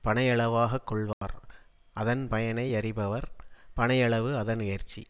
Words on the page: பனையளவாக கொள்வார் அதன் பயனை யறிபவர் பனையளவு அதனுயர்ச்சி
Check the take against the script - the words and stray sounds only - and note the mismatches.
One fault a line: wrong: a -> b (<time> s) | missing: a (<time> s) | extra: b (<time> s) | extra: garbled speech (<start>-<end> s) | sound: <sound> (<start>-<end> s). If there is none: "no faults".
sound: dropout (1.1-1.2 s)